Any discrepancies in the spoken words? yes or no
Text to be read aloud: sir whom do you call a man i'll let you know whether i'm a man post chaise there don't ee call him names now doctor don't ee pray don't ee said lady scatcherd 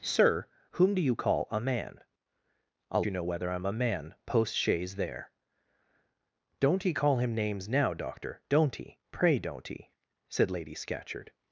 yes